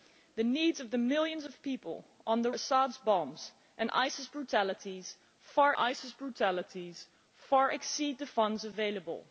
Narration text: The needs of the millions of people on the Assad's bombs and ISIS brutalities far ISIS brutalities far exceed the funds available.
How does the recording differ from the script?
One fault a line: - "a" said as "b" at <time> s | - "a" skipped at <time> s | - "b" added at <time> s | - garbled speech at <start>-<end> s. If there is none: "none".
none